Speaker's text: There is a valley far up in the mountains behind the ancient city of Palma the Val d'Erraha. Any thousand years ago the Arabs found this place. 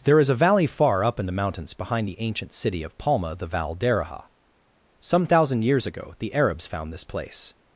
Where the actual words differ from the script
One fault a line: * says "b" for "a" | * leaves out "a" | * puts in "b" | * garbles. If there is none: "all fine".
* says "Some" for "Any"